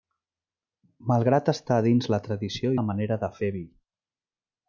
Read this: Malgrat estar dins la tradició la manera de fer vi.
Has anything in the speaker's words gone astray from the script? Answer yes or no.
no